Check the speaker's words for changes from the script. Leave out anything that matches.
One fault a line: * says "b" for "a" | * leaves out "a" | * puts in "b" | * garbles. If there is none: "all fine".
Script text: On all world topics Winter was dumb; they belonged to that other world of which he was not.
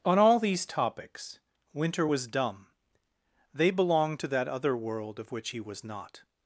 * says "these" for "world"